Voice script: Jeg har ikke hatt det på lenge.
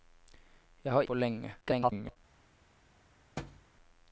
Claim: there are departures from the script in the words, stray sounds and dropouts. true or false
true